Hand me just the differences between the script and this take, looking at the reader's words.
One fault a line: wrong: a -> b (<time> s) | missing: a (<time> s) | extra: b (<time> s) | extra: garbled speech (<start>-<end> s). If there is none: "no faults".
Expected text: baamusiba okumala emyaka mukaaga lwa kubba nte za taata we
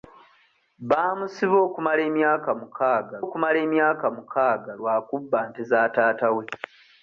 extra: okumala emyaka mukaaga (3.2 s)